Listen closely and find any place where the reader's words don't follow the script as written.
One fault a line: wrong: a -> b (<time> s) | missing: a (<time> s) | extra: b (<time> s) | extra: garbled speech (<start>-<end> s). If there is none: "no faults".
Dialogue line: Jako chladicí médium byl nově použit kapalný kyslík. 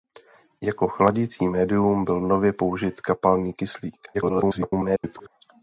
extra: garbled speech (4.1-5.3 s)